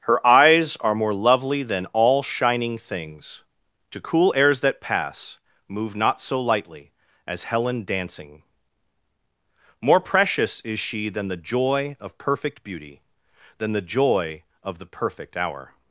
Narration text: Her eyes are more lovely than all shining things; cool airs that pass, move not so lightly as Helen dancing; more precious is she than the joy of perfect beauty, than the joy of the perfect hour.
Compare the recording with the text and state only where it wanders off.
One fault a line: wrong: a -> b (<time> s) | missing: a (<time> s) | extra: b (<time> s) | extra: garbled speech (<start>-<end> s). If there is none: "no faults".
extra: to (3.9 s)